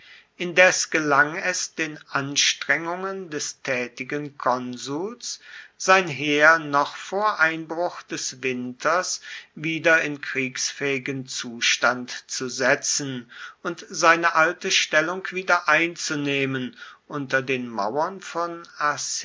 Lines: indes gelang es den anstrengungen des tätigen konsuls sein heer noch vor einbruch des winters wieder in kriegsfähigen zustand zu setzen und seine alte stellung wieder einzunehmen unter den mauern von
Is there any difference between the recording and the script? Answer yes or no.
no